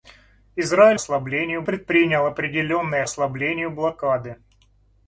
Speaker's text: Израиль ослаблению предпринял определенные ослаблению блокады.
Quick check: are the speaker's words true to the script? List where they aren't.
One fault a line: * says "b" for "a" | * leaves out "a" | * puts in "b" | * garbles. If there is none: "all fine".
all fine